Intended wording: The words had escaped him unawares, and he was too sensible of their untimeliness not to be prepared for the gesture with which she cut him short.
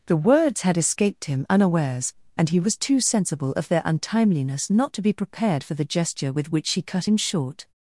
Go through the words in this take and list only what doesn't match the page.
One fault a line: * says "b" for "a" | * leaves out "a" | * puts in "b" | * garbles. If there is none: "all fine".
all fine